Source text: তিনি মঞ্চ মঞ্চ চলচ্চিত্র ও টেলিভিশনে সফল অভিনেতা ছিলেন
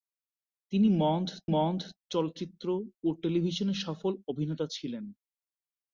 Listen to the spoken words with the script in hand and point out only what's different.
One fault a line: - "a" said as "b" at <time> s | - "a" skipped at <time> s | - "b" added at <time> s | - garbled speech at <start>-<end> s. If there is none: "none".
none